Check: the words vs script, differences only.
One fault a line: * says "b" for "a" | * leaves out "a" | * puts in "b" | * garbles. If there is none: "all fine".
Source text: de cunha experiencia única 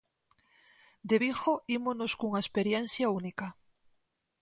* puts in "vigo ímonos"